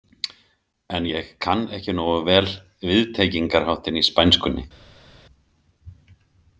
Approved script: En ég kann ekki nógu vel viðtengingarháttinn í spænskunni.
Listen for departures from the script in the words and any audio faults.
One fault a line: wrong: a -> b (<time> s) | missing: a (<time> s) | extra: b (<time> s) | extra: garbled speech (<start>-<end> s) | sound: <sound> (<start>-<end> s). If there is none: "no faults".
no faults